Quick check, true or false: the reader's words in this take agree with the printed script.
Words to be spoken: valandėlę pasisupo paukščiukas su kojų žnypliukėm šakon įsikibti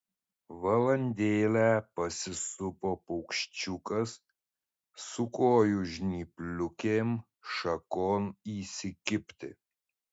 true